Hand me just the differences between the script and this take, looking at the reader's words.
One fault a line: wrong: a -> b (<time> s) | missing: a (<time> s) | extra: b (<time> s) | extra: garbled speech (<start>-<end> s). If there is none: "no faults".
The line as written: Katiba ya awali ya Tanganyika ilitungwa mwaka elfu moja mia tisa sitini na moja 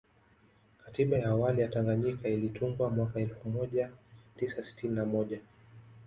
missing: mia (3.9 s)